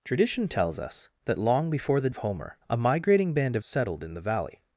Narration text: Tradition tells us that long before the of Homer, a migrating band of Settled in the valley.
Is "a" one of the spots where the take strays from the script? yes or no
no